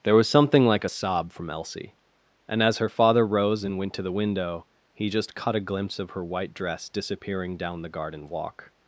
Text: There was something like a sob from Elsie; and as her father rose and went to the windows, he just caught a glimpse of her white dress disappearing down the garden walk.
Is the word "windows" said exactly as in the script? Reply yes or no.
no